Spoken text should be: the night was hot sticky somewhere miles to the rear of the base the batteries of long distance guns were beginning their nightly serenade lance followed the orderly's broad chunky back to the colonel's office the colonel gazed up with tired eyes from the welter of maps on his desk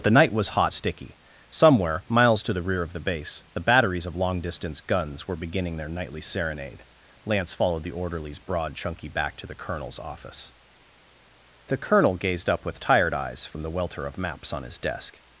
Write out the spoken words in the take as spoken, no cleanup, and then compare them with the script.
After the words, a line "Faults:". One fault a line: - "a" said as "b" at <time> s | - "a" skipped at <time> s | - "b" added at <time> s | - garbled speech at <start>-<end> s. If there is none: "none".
the night was hot sticky somewhere miles to the rear of the base the batteries of long distance guns were beginning their nightly serenade lance followed the orderly's broad chunky back to the colonel's office the colonel gazed up with tired eyes from the welter of maps on his desk
Faults:
none